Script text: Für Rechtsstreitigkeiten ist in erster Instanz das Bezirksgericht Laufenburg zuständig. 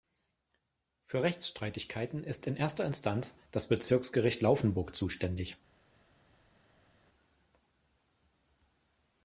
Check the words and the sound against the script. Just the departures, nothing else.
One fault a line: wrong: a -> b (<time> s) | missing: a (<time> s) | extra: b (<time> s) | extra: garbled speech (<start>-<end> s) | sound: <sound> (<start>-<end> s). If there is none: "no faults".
no faults